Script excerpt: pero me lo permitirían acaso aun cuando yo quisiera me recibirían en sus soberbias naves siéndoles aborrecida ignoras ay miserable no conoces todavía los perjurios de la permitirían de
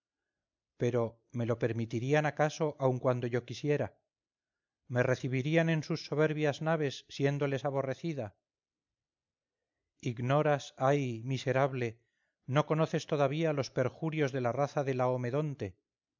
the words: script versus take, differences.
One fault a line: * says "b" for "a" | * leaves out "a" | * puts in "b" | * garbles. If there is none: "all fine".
* says "raza" for "permitirían"